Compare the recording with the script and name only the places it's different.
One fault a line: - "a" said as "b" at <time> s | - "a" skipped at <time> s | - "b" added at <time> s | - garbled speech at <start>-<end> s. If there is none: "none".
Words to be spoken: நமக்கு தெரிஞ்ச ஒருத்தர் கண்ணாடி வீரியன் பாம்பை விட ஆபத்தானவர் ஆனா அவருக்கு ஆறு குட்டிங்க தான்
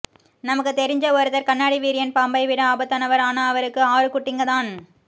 none